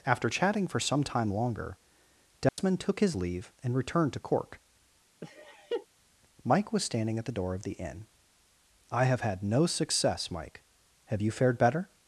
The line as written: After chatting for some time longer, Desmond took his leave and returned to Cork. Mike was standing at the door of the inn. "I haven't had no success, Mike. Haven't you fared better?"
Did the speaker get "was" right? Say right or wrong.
right